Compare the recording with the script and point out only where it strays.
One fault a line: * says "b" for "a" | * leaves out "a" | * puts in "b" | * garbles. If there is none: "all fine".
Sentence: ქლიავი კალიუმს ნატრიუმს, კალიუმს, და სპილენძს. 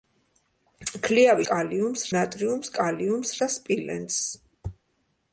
all fine